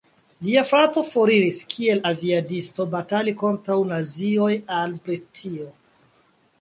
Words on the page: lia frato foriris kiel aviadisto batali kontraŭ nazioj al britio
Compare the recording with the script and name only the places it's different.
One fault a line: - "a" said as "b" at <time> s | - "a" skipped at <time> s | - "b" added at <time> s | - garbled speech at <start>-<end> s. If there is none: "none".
none